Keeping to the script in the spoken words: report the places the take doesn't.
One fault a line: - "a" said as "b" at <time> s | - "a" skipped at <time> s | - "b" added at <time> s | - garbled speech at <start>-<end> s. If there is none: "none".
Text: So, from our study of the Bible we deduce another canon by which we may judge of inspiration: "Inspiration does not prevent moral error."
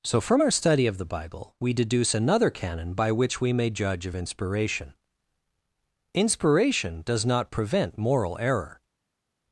none